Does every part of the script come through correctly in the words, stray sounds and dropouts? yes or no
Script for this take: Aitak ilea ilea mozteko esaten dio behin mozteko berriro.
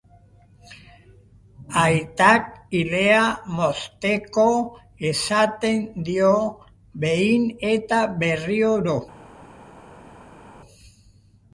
no